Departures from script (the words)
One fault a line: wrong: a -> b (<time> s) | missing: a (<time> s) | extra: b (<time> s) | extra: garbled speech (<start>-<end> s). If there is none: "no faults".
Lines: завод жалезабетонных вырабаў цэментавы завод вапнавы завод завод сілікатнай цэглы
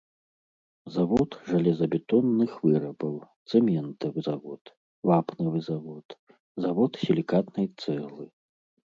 no faults